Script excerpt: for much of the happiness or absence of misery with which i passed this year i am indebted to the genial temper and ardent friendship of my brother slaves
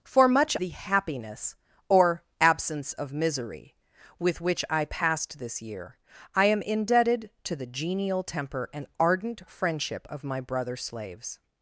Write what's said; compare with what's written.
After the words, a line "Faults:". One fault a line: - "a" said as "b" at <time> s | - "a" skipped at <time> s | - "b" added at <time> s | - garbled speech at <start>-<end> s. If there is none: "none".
for much the happiness or absence of misery with which i passed this year i am indebted to the genial temper and ardent friendship of my brother slaves
Faults:
- "of" skipped at 0.6 s